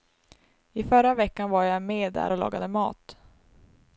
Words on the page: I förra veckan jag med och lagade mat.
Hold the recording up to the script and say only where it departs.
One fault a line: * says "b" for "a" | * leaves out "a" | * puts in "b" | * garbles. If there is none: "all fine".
* puts in "var"
* puts in "där"